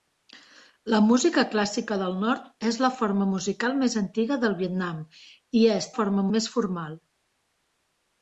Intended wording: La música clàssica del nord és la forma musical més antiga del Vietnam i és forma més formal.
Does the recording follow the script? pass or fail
pass